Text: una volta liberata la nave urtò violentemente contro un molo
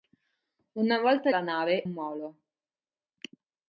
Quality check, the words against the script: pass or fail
fail